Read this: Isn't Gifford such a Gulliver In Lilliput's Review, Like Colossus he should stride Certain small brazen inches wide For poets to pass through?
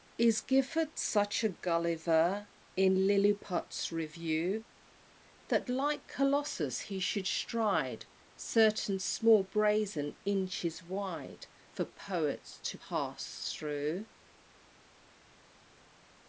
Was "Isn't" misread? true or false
true